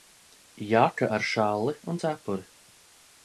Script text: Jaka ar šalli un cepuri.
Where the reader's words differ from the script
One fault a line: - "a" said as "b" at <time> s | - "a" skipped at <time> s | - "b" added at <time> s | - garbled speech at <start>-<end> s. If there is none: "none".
none